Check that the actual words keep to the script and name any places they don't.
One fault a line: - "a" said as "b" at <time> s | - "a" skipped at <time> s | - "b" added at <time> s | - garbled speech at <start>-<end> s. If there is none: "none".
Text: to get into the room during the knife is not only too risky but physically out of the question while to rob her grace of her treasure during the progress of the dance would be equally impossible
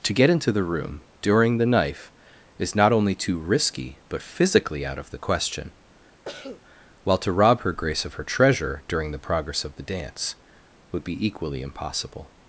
none